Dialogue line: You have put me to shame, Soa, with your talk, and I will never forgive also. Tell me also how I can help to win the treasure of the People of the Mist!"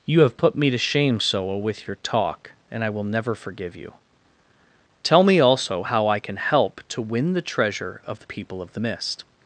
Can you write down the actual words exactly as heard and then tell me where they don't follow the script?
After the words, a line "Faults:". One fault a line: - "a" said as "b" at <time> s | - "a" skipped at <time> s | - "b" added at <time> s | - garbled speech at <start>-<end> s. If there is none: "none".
You have put me to shame, Soa, with your talk, and I will never forgive you. Tell me also how I can help to win the treasure of the People of the Mist!"
Faults:
- "also" said as "you" at 3.8 s